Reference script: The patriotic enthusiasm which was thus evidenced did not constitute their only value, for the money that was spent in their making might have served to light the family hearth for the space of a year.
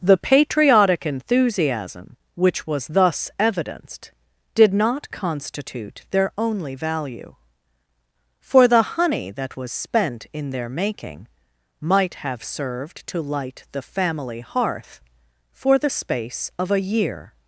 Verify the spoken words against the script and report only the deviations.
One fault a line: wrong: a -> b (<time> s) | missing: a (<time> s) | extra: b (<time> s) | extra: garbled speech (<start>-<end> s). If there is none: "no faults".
wrong: money -> honey (8.8 s)